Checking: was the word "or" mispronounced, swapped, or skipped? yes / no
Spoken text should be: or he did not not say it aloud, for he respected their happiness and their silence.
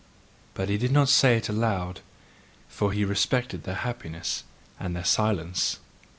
yes